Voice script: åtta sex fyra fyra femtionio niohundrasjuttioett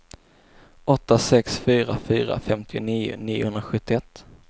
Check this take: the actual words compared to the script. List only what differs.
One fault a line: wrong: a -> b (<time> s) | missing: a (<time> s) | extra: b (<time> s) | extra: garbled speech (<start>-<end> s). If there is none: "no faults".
no faults